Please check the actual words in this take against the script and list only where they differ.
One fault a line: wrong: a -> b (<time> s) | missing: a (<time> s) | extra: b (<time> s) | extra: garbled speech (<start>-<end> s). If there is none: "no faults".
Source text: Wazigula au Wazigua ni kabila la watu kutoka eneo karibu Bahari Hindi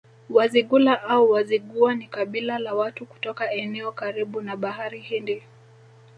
extra: na (4.4 s)